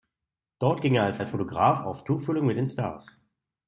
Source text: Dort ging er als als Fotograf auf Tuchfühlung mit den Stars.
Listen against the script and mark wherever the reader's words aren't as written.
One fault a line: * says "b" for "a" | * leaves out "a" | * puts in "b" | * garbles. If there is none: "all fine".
all fine